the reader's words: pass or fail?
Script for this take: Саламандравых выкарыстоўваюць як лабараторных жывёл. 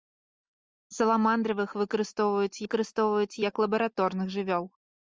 fail